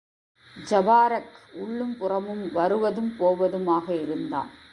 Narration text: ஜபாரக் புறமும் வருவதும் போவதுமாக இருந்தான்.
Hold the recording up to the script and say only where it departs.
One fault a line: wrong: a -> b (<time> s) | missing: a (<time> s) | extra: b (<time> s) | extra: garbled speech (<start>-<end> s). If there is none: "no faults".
extra: உள்ளும் (1.5 s)